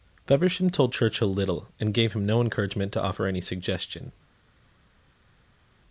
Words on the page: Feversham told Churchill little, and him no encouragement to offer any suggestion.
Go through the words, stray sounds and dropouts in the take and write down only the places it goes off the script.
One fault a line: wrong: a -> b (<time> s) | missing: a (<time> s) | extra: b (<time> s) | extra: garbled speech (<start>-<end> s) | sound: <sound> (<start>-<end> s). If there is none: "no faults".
extra: gave (1.9 s)